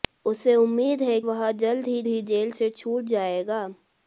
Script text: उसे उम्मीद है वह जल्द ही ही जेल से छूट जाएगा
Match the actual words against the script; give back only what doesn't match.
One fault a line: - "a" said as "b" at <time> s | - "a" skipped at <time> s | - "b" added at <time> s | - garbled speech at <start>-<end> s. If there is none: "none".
none